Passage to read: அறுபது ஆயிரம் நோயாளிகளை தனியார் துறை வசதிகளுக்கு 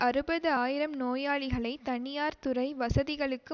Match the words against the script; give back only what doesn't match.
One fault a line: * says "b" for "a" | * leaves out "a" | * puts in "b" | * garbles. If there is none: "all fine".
all fine